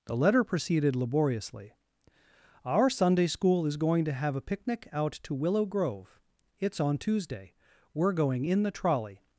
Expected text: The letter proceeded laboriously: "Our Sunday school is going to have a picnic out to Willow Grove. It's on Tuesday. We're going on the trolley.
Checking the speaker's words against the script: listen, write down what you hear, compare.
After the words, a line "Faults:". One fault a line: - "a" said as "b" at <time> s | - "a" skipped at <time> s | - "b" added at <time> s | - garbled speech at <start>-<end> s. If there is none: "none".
The letter proceeded laboriously: "Our Sunday school is going to have a picnic out to Willow Grove. It's on Tuesday. We're going in the trolley.
Faults:
- "on" said as "in" at 8.4 s